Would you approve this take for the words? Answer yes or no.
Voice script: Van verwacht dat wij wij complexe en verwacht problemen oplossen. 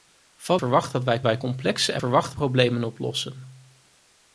yes